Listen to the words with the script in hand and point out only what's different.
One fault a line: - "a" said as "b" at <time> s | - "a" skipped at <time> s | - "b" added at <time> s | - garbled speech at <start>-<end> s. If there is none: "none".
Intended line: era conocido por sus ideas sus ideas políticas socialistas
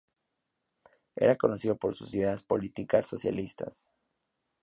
- "sus ideas" skipped at 2.4 s